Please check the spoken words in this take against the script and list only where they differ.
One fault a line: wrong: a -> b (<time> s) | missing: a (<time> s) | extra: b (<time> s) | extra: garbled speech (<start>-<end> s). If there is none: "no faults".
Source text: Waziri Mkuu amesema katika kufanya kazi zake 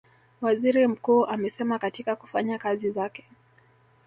no faults